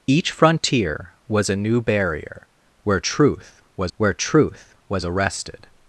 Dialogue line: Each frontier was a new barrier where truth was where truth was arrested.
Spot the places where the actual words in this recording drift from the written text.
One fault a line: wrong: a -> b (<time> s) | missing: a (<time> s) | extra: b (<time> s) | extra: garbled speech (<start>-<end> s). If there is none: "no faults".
no faults